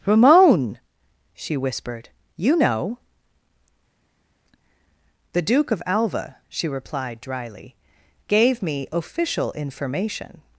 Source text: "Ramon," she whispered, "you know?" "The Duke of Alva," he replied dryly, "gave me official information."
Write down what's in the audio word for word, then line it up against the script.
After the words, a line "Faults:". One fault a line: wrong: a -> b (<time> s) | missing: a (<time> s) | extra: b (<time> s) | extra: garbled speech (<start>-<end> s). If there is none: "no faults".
"Ramon," she whispered, "you know?" "The Duke of Alva," she replied dryly, "gave me official information."
Faults:
wrong: he -> she (6.5 s)